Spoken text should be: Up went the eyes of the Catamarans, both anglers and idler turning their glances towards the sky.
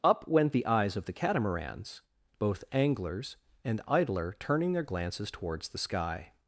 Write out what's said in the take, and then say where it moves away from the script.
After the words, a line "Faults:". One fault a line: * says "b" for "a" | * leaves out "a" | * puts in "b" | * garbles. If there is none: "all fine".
Up went the eyes of the Catamarans, both anglers and idler turning their glances towards the sky.
Faults:
all fine